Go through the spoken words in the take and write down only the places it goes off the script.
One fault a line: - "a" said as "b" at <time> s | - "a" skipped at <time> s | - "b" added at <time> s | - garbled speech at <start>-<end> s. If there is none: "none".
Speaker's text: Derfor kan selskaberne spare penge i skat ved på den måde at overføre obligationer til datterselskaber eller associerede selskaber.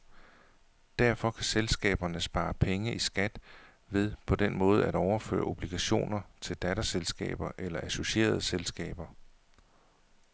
none